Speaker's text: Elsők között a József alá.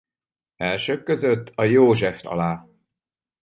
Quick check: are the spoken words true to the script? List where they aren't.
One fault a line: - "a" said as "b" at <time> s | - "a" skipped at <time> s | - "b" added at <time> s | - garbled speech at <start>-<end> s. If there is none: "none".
none